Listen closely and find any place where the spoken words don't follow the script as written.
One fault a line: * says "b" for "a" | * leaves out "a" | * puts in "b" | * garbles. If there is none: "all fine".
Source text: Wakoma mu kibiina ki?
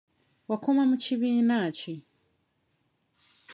all fine